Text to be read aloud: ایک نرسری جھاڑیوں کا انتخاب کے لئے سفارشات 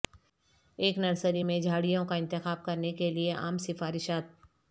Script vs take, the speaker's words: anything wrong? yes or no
yes